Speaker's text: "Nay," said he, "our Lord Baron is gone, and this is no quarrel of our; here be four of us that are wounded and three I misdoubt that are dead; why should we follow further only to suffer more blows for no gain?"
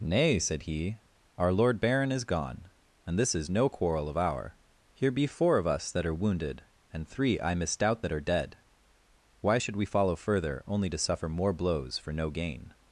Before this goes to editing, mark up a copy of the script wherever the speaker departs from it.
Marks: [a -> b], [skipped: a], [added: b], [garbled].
"Nay," said he, "our Lord Baron is gone, and this is no quarrel of our; here be four of us that are wounded and three I misdoubt that are dead; why should we follow further only to suffer more blows for no gain?"